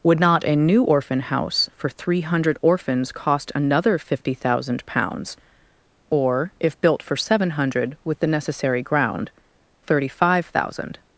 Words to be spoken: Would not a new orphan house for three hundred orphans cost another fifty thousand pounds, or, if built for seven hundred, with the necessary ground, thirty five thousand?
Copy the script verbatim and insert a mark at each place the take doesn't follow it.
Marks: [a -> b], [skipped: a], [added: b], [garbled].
Would not a new orphan house for three hundred orphans cost another fifty thousand pounds, or, if built for seven hundred, with the necessary ground, thirty five thousand?